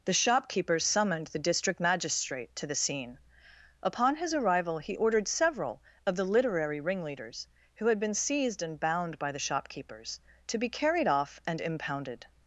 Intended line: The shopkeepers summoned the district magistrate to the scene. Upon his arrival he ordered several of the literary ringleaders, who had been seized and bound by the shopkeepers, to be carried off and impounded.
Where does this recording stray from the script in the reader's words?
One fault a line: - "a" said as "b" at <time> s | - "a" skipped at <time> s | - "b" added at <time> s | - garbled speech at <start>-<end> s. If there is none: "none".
none